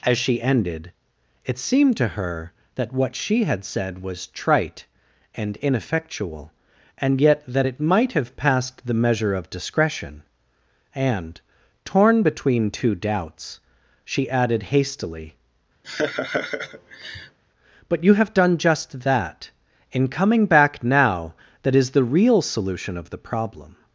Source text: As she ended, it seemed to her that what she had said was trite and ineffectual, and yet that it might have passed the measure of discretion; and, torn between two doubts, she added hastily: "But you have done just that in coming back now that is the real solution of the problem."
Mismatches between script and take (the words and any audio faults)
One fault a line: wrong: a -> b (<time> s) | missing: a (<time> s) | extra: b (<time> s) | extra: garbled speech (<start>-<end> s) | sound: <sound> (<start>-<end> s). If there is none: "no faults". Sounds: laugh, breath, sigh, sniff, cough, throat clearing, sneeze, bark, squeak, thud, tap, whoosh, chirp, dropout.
sound: laugh (15.8-17.4 s)